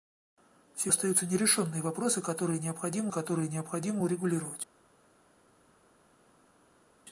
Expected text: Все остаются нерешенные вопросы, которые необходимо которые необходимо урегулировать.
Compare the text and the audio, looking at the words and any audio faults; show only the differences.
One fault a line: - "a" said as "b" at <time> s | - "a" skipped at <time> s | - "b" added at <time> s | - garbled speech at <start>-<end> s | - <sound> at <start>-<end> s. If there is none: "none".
none